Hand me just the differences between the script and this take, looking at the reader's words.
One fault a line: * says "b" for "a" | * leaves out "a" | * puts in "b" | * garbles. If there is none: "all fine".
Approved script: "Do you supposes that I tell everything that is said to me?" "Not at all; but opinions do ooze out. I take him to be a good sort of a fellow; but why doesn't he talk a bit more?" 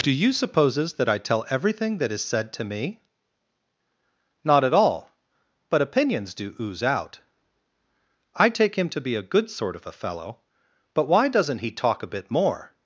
all fine